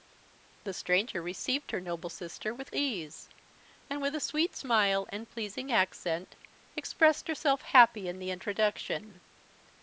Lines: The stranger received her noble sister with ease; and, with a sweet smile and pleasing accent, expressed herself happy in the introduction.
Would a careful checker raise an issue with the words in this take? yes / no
no